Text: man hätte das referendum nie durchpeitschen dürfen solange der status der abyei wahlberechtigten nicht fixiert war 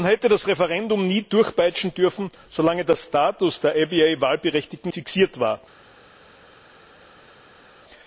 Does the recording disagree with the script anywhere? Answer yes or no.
yes